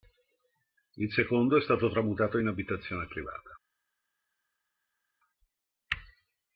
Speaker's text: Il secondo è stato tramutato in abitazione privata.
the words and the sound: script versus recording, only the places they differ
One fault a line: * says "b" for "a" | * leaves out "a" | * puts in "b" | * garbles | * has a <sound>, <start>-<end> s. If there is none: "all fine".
all fine